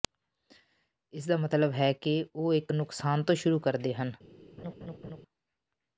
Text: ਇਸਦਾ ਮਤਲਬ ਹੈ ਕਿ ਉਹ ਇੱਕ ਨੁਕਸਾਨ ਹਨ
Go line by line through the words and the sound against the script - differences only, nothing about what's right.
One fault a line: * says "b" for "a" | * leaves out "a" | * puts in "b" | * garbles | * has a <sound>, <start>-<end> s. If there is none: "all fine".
* puts in "ਤੋਂ ਸ਼ੁਰੂ ਕਰਦੇ"
* has a laugh, 4.6-5.2 s